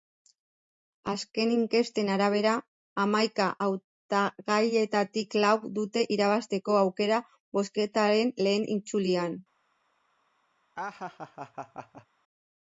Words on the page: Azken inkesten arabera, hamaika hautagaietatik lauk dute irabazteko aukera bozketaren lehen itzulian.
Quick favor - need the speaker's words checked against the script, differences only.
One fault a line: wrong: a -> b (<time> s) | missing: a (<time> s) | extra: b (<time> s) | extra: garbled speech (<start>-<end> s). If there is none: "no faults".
no faults